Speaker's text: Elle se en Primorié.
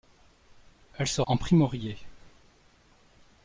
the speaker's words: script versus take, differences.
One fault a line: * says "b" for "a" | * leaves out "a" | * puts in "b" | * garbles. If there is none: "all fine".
all fine